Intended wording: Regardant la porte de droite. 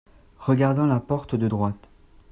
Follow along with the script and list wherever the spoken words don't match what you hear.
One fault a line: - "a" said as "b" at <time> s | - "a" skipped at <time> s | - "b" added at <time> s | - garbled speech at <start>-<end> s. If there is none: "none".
none